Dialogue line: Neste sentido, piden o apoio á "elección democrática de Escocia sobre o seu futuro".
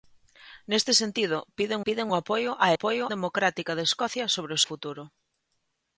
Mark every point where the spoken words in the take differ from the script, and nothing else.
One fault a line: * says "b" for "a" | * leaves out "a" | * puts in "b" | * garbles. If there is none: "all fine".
* puts in "piden"
* says "apoio" for "elección"
* leaves out "seu"